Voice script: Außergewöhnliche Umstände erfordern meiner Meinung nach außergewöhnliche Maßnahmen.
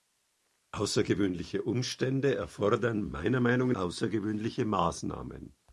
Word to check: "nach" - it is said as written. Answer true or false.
false